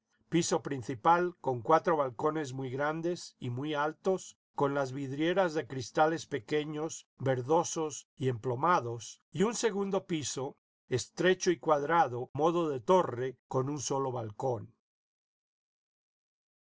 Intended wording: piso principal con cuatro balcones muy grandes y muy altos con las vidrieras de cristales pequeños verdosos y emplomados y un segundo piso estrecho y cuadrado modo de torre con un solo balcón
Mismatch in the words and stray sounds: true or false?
false